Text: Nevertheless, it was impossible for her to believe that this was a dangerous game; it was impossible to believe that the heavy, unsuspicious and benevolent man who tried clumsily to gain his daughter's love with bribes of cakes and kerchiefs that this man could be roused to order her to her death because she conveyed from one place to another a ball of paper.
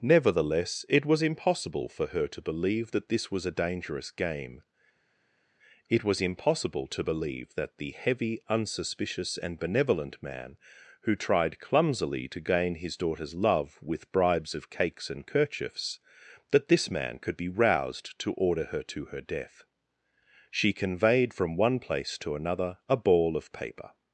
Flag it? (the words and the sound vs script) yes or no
yes